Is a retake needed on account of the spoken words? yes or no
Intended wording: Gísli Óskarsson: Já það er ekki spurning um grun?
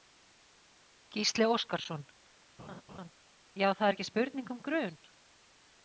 no